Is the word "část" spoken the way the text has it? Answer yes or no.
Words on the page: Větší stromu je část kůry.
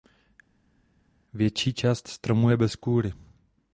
no